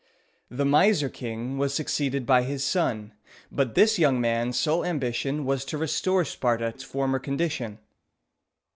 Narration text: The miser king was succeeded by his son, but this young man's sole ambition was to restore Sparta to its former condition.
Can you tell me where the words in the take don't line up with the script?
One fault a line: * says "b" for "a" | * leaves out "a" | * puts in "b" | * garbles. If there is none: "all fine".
* leaves out "to"